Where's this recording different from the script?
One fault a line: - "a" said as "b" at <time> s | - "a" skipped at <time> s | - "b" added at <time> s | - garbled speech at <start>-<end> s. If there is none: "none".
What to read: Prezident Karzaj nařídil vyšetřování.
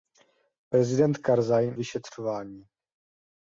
- "nařídil" skipped at 1.8 s